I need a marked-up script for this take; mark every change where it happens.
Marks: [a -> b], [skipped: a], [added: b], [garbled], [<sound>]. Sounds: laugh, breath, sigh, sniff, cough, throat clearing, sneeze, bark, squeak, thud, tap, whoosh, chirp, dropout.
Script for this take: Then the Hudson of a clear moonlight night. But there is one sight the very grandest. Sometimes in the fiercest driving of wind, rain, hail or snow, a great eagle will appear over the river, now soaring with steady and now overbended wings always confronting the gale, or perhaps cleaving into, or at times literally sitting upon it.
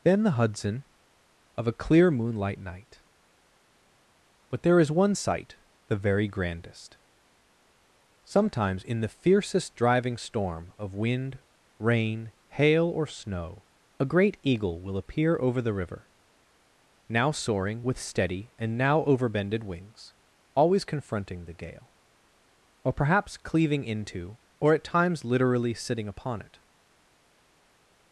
Then the Hudson of a clear moonlight night. But there is one sight the very grandest. Sometimes in the fiercest driving [added: storm] of wind, rain, hail or snow, a great eagle will appear over the river, now soaring with steady and now overbended wings always confronting the gale, or perhaps cleaving into, or at times literally sitting upon it.